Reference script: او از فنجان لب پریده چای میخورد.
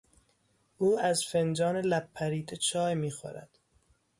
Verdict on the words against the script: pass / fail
pass